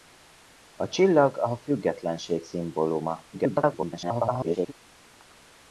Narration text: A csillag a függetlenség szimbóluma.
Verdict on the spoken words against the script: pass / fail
fail